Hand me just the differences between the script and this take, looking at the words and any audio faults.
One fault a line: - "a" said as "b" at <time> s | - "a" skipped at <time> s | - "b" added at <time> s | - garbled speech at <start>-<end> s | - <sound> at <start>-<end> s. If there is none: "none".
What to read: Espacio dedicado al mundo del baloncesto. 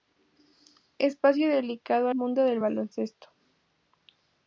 - "al" skipped at 2.1 s